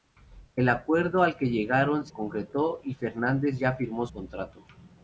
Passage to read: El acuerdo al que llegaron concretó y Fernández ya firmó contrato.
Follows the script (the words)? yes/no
yes